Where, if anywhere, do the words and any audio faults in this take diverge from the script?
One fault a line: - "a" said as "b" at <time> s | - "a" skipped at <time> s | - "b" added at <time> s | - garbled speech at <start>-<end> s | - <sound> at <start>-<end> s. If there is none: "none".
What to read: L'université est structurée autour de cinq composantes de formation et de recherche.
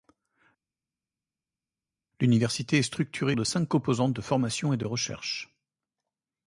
- "autour" skipped at 3.4 s